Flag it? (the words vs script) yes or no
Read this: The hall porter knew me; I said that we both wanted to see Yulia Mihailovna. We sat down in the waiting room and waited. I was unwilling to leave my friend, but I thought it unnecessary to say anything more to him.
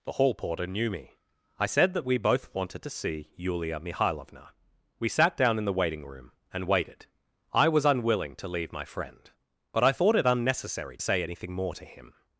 yes